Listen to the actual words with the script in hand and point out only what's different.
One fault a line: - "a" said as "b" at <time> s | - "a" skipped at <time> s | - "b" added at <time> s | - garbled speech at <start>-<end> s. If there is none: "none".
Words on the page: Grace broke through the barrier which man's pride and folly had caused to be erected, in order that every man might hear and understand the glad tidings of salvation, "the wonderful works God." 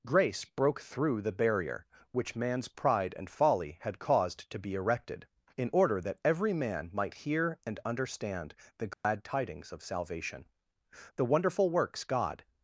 none